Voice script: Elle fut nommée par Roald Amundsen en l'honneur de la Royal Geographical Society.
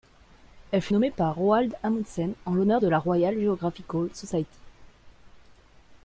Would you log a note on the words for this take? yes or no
no